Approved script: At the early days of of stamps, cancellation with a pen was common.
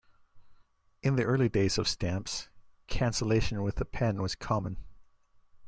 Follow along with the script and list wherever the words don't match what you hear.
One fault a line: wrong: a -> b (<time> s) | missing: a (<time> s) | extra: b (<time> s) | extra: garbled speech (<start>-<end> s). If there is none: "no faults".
wrong: At -> In (1.0 s)
missing: of (1.9 s)